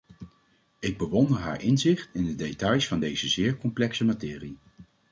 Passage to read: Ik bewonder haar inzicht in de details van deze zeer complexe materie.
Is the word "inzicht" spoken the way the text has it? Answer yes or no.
yes